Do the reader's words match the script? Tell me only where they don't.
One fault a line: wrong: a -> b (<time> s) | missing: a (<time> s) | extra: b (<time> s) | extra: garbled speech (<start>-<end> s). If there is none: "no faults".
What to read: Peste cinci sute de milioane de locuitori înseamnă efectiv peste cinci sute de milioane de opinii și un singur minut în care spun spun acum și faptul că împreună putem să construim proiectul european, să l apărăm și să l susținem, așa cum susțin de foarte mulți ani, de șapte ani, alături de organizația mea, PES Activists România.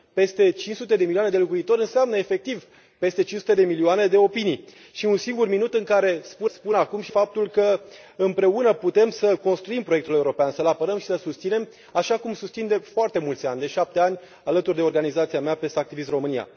no faults